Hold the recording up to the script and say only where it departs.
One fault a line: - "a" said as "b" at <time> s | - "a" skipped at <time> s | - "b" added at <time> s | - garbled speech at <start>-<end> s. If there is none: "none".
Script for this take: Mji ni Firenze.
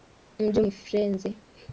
none